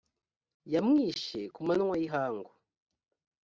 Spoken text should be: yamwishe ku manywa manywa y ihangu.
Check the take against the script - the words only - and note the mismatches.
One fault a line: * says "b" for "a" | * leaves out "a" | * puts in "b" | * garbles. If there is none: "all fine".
* leaves out "manywa"